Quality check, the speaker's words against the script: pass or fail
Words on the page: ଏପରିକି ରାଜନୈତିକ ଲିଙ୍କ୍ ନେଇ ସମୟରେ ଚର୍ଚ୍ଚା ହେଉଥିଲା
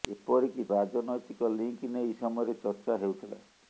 pass